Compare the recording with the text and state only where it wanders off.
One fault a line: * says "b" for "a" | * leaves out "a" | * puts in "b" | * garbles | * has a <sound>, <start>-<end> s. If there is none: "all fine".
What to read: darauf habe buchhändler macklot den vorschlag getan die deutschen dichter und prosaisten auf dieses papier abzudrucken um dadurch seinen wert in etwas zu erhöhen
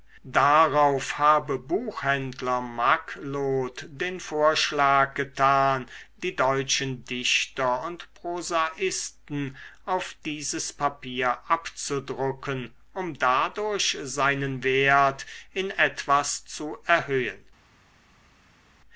all fine